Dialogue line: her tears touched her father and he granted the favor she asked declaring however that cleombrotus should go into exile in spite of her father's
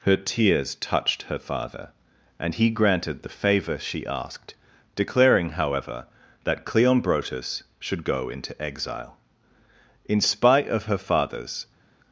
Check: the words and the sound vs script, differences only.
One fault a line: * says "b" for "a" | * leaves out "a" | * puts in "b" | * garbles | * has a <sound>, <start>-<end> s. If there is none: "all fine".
all fine